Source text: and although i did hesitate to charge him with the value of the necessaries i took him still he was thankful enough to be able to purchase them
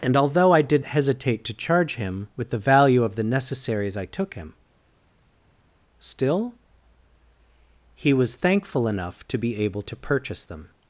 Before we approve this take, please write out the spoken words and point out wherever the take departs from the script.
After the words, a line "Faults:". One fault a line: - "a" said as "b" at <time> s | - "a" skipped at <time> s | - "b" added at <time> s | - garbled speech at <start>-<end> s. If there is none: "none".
and although i did hesitate to charge him with the value of the necessaries i took him still he was thankful enough to be able to purchase them
Faults:
none